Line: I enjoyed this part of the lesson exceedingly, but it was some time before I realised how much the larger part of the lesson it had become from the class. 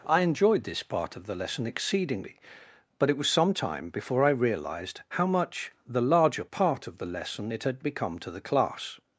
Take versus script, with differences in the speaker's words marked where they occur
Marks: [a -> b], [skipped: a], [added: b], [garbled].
I enjoyed this part of the lesson exceedingly, but it was some time before I realised how much the larger part of the lesson it had become [from -> to] the class.